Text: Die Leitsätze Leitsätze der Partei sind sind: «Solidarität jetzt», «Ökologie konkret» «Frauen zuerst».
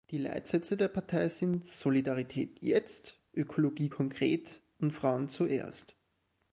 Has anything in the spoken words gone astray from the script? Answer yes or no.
yes